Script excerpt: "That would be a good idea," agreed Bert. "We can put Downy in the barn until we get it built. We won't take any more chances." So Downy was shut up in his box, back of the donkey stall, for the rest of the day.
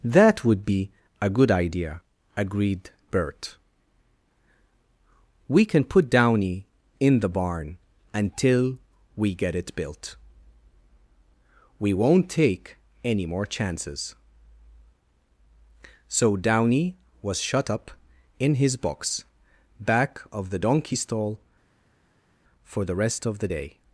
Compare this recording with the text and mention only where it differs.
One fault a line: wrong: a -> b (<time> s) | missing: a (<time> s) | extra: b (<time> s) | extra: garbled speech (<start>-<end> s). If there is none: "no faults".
no faults